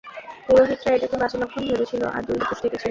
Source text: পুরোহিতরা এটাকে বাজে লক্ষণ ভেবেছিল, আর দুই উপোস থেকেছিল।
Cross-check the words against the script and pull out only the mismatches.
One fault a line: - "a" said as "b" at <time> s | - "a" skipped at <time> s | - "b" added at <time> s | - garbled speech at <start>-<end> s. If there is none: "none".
none